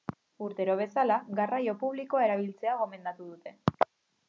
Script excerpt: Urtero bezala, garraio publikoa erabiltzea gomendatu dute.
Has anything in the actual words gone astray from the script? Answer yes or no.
no